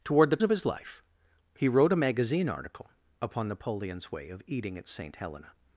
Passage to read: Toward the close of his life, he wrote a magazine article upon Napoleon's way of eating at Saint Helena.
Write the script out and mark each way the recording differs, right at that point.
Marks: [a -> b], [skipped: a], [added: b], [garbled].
Toward the [skipped: close] of his life, he wrote a magazine article upon Napoleon's way of eating at Saint Helena.